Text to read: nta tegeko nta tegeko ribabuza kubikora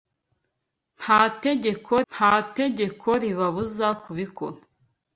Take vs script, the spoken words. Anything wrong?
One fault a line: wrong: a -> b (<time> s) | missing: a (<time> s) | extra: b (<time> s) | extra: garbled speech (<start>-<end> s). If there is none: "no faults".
no faults